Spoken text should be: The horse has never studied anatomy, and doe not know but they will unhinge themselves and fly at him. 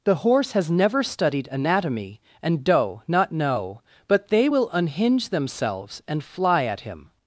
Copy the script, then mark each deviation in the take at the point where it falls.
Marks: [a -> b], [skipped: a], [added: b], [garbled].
The horse has never studied anatomy, and doe not know but they will unhinge themselves and fly at him.